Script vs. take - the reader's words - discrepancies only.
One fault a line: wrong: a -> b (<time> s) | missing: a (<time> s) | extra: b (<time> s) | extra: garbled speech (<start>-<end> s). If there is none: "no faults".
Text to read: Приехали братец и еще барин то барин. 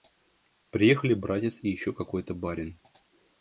wrong: барин -> какой (1.9 s)